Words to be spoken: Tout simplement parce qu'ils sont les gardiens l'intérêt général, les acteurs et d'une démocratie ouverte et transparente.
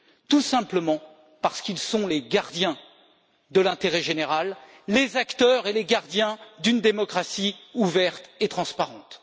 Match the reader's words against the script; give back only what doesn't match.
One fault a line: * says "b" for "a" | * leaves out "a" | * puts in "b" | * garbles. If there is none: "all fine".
* puts in "de"
* puts in "les gardiens"